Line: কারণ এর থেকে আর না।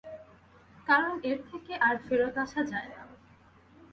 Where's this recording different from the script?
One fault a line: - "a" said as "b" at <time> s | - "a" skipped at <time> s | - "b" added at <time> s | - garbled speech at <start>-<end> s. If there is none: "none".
- "ফেরত আসা যায়" added at 2.0 s